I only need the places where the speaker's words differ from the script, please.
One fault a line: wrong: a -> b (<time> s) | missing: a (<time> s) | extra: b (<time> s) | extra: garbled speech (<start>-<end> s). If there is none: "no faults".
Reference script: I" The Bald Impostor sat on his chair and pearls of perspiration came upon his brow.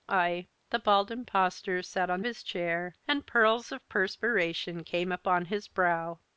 no faults